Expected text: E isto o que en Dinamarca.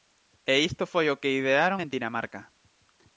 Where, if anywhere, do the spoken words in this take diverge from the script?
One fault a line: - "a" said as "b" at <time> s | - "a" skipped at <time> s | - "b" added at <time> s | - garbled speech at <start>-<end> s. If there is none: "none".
- "foi" added at 0.9 s
- "idearon" added at 1.4 s